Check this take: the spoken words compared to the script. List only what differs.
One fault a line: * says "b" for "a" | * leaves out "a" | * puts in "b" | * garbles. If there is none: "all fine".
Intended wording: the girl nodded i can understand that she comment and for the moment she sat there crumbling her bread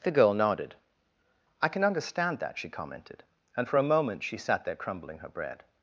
* says "commented" for "comment"
* says "a" for "the"